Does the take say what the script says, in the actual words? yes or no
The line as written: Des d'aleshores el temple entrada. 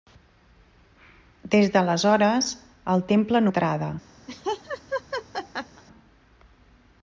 yes